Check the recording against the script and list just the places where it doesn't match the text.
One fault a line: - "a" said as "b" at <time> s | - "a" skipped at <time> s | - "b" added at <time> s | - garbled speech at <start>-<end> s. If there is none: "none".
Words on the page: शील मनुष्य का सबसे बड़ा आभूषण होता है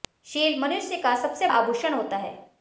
- "बड़ा" skipped at 1.5 s